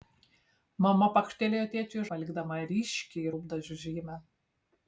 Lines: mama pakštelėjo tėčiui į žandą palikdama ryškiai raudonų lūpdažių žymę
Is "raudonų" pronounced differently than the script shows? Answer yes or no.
yes